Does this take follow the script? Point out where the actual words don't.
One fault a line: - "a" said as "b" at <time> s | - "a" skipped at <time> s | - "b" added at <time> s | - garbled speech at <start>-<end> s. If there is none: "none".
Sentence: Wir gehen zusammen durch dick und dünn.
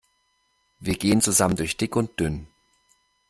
none